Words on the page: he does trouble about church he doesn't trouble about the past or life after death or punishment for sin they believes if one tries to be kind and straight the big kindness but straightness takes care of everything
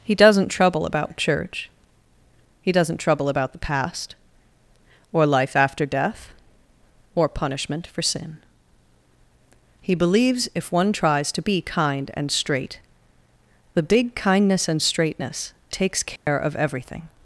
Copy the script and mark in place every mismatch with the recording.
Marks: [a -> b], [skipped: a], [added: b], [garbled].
he [does -> doesn't] trouble about church he doesn't trouble about the past or life after death or punishment for sin [they -> he] believes if one tries to be kind and straight the big kindness [but -> and] straightness takes care of everything